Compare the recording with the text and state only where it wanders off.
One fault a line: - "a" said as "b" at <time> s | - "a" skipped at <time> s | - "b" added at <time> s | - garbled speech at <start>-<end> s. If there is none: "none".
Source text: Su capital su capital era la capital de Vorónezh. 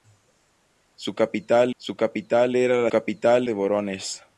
none